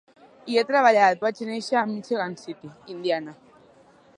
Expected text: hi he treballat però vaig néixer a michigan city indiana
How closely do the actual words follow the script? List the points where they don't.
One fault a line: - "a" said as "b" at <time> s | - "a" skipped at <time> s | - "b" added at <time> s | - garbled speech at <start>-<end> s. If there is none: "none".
- "però" skipped at 1.2 s